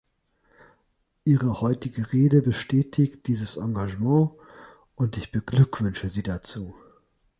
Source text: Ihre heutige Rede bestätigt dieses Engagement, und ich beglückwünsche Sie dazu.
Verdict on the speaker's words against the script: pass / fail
pass